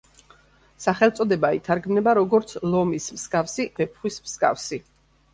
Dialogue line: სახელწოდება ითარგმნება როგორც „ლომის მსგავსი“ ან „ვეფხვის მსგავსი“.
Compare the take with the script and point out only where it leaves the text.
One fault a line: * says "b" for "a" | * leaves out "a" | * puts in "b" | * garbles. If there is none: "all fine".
* leaves out "ან"